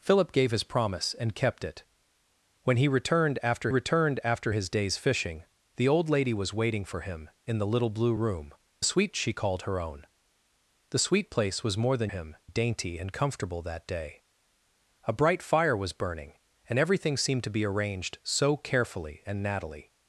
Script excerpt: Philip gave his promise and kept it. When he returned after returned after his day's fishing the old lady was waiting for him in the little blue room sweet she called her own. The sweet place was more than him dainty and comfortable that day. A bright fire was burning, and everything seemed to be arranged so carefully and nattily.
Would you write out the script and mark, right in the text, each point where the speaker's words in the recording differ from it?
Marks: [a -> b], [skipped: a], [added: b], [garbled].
Philip gave his promise and kept it. When he returned after returned after his day's fishing the old lady was waiting for him in the little blue room sweet she called her own. The sweet place was more than him dainty and comfortable that day. A bright fire was burning, and everything seemed to be arranged so carefully and nattily.